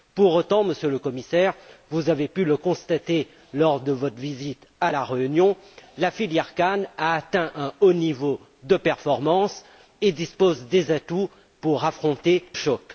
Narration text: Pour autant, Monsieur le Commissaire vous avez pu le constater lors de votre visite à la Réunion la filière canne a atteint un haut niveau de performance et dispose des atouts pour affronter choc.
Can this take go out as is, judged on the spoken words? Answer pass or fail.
pass